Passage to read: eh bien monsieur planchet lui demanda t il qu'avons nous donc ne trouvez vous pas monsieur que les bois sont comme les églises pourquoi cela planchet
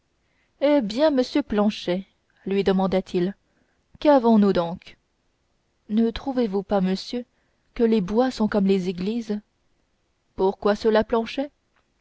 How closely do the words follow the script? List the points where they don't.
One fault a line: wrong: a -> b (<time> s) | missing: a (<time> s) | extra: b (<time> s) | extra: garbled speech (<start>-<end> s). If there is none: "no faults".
no faults